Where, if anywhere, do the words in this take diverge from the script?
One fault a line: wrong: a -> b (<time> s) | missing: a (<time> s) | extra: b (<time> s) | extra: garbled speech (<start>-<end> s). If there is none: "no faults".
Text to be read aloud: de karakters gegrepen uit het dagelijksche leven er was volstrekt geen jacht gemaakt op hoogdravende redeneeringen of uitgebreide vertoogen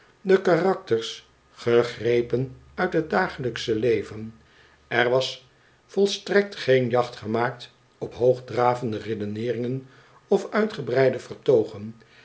no faults